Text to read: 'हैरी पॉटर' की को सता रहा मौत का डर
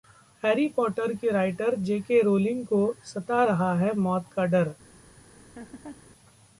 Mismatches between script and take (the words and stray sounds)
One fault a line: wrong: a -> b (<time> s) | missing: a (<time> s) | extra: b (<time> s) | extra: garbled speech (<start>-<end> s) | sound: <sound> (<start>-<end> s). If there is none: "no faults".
extra: राइटर जे.के रोलिंग (1.3 s)
extra: है (3.8 s)
sound: laugh (5.3-6.1 s)